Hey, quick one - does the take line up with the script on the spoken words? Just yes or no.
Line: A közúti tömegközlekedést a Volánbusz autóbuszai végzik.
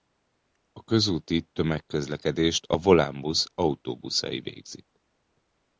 yes